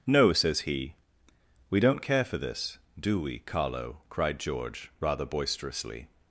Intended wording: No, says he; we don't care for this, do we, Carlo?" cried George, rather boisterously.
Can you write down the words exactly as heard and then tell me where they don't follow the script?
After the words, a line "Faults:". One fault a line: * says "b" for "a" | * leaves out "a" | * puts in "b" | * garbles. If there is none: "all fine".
No, says he; we don't care for this, do we, Carlo?" cried George, rather boisterously.
Faults:
all fine